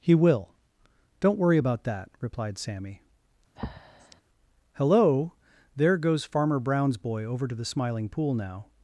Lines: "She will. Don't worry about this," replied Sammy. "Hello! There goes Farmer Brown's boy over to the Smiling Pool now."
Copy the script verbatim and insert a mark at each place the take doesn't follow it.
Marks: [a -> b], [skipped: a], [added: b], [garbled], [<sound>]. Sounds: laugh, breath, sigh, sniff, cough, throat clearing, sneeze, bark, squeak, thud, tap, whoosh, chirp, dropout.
["She -> He] will. Don't worry about [this," -> that] replied Sammy. [breath] "Hello! There goes Farmer Brown's boy over to the Smiling Pool now."